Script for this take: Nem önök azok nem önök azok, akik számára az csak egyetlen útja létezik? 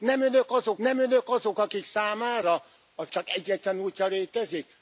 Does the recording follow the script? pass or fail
pass